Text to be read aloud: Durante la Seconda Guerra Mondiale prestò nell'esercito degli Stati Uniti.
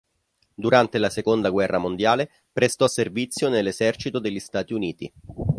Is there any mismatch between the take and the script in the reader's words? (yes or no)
yes